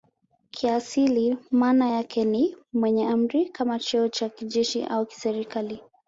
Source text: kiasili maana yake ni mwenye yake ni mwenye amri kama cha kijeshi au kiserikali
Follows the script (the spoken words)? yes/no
no